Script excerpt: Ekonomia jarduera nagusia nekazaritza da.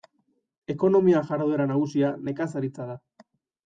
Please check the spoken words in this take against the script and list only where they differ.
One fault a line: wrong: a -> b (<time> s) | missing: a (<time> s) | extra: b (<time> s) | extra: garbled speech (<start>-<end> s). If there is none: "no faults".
no faults